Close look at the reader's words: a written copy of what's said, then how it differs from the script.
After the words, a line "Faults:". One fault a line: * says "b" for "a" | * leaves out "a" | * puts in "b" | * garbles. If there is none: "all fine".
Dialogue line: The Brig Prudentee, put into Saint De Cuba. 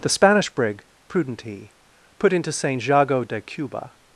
The Spanish brig Prudentee, put into Saint Jago de Cuba.
Faults:
* puts in "Spanish"
* puts in "Jago"